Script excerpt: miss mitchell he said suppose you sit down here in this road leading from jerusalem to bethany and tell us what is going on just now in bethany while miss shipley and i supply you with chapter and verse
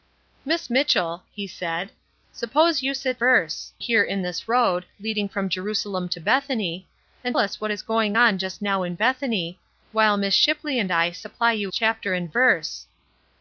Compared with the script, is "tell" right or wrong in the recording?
wrong